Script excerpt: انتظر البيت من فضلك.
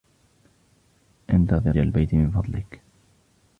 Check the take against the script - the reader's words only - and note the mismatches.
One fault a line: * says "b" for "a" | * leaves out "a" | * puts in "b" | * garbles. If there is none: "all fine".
all fine